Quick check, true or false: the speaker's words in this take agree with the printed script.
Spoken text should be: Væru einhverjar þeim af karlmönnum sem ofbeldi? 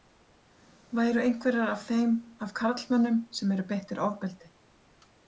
false